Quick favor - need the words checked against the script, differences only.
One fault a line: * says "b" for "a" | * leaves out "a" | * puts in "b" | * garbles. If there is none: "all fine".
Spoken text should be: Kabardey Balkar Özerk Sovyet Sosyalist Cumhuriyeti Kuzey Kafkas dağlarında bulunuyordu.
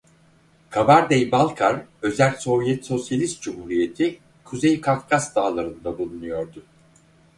all fine